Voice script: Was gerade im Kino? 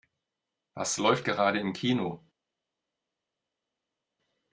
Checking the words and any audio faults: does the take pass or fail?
fail